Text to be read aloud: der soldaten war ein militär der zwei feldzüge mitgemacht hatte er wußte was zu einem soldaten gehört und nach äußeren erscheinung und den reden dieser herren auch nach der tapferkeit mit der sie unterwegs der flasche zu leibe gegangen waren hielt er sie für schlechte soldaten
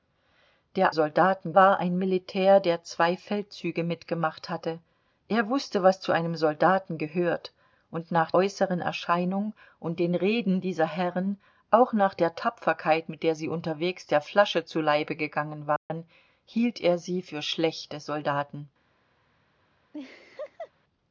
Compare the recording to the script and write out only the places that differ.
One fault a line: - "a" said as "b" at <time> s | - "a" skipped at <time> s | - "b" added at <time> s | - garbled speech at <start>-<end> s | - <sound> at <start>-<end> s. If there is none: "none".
- dropout at 15.8-15.9 s
- laugh at 19.9-20.7 s